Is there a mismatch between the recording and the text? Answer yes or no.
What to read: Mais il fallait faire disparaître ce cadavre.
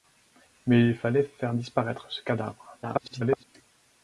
yes